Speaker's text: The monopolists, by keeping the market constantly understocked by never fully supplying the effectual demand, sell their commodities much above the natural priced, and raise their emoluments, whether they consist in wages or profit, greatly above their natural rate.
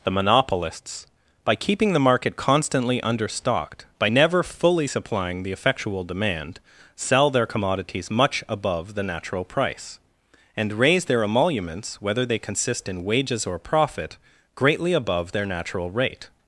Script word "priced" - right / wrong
wrong